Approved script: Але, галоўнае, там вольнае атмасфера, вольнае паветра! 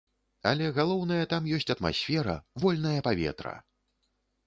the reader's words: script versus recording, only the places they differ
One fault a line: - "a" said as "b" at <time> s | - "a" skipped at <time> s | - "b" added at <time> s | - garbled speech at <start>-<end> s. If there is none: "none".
- "вольнае" said as "ёсць" at 1.6 s